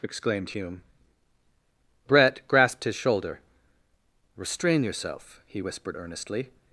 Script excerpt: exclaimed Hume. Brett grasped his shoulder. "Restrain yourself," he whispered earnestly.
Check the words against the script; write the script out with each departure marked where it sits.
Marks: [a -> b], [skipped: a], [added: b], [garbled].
exclaimed Hume. Brett grasped his shoulder. "Restrain yourself," he whispered earnestly.